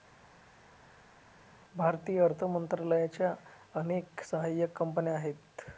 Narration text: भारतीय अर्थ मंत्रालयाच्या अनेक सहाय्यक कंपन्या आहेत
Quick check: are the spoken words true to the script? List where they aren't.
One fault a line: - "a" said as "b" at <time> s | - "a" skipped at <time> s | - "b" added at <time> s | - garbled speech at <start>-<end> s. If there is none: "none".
none